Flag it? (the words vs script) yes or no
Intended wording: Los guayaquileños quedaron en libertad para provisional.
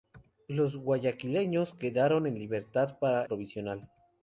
no